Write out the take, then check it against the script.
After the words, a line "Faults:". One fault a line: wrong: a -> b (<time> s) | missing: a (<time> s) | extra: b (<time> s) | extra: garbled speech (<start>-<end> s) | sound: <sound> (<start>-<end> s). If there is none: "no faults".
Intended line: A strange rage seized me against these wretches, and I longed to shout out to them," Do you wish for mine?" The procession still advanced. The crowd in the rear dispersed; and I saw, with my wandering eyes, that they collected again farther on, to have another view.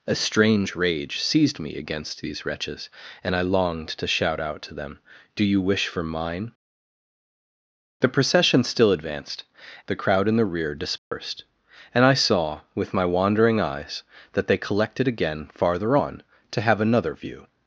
A strange rage seized me against these wretches, and I longed to shout out to them," Do you wish for mine?" The procession still advanced. The crowd in the rear dispersed; and I saw, with my wandering eyes, that they collected again farther on, to have another view.
Faults:
sound: dropout (11.0-11.1 s)